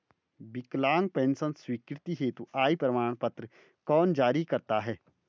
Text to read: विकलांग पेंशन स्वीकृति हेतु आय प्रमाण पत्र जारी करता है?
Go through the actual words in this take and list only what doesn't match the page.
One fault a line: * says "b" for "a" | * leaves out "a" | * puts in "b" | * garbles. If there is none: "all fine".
* puts in "कौन"